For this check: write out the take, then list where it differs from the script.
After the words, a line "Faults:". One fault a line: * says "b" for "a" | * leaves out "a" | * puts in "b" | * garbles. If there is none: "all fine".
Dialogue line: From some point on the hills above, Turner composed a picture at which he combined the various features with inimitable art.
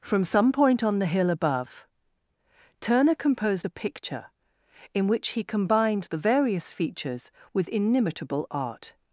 From some point on the hill above, Turner composed a picture in which he combined the various features with inimitable art.
Faults:
* says "hill" for "hills"
* says "in" for "at"